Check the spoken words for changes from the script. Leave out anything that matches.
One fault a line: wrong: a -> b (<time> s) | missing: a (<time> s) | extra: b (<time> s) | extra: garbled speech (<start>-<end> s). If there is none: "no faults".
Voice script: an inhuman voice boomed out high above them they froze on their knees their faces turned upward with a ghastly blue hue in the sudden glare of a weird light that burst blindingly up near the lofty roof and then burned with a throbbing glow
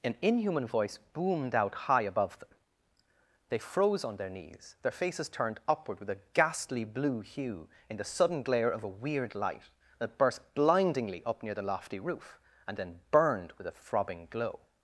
no faults